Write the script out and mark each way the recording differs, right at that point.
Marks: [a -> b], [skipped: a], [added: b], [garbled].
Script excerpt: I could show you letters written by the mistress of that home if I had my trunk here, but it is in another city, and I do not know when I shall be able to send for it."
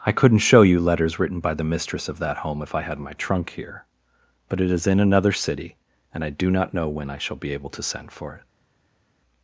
I [could -> couldn't] show you letters written by the mistress of that home if I had my trunk here, but it is in another city, and I do not know when I shall be able to send for it."